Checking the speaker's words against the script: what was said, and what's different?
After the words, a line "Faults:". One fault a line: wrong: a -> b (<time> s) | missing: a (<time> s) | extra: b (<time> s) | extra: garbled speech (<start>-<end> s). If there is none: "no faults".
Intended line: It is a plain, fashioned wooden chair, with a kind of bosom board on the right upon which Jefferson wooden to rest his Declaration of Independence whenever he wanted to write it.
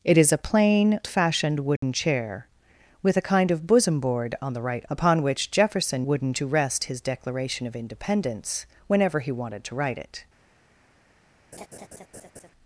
It is a plain, fashioned wooden chair, with a kind of bosom board on the right upon which Jefferson wooden to rest his Declaration of Independence whenever he wanted to write it.
Faults:
no faults